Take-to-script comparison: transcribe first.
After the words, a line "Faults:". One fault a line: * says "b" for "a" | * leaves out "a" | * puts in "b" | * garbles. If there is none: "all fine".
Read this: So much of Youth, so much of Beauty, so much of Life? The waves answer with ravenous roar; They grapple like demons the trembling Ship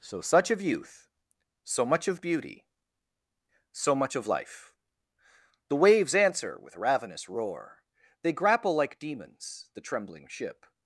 So such of Youth, so much of Beauty, so much of Life? The waves answer with ravenous roar; They grapple like demons the trembling Ship
Faults:
* says "such" for "much"